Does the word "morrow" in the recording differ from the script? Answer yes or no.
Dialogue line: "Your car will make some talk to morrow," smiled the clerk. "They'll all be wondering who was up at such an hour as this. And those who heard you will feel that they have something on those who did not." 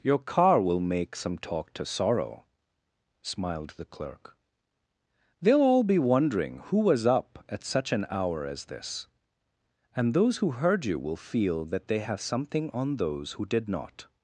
yes